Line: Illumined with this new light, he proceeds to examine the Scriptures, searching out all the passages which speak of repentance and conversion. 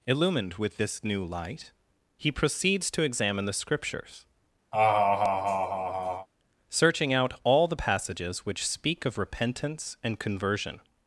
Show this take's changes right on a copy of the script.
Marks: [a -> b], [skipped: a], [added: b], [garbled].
Illumined with this new light, he proceeds to examine the Scriptures, searching out all the passages which speak of repentance and conversion.